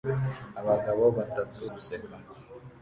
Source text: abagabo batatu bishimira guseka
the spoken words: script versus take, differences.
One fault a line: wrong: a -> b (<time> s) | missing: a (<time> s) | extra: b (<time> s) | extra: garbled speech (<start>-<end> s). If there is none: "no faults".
missing: bishimira (1.6 s)